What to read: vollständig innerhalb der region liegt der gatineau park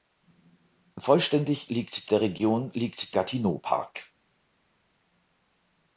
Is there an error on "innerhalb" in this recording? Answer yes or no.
yes